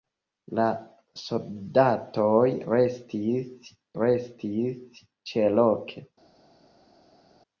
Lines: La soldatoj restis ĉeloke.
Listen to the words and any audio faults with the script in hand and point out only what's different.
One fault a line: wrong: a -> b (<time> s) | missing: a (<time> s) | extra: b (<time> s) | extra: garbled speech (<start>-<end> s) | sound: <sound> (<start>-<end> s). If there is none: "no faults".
extra: restis (4.0 s)